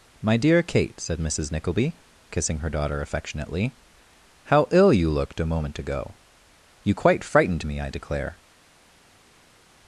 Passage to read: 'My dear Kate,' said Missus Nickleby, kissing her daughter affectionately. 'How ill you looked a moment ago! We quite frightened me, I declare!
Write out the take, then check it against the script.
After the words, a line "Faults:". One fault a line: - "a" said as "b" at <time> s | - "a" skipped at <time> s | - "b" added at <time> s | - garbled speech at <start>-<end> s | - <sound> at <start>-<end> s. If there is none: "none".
'My dear Kate,' said Missus Nickleby, kissing her daughter affectionately. 'How ill you looked a moment ago! You quite frightened me, I declare!
Faults:
- "We" said as "You" at 6.8 s